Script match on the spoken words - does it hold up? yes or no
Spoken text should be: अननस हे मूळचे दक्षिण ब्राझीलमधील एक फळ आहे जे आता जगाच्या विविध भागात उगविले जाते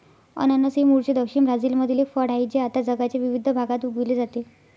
yes